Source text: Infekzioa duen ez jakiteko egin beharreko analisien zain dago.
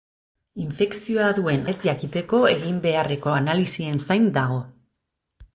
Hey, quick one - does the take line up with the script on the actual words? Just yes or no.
yes